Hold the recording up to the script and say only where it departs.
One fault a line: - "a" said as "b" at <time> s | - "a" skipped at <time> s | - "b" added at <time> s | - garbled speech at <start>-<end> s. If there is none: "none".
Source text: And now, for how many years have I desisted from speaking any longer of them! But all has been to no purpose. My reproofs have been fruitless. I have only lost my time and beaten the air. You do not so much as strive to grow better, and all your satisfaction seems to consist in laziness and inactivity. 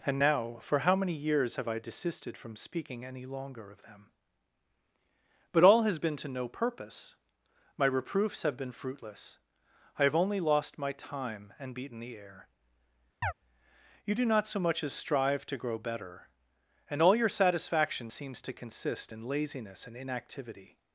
none